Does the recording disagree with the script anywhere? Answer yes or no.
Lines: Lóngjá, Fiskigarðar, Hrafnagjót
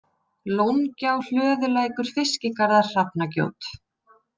yes